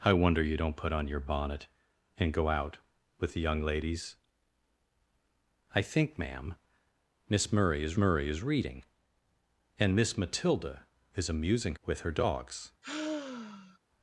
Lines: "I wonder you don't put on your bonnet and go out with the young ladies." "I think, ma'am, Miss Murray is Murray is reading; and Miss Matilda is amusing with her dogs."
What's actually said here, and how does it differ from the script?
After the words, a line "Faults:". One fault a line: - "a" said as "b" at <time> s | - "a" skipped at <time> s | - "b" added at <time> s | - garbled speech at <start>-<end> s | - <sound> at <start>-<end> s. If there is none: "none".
"I wonder you don't put on your bonnet and go out with the young ladies." "I think, ma'am, Miss Murray is Murray is reading; and Miss Matilda is amusing with her dogs."
Faults:
- sigh at 12.8-13.8 s